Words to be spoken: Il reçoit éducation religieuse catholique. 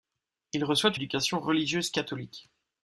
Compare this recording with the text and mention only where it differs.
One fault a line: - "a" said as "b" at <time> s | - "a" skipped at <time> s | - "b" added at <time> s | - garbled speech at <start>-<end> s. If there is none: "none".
none